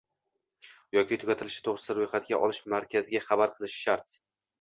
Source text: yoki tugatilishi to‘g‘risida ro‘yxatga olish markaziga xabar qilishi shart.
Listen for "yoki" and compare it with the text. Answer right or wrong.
right